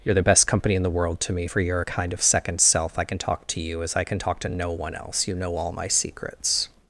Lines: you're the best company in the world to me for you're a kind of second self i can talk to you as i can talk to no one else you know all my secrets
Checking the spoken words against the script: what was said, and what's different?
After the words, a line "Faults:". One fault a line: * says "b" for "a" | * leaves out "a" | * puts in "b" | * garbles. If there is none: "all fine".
you're the best company in the world to me for you're a kind of second self i can talk to you as i can talk to no one else you know all my secrets
Faults:
all fine